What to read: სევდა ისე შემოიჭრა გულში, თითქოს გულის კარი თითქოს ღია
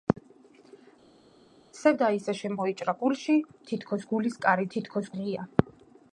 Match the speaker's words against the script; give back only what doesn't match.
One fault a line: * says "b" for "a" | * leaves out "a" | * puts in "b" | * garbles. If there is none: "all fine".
all fine